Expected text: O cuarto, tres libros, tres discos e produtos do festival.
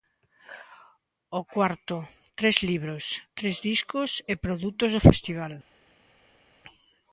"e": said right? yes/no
yes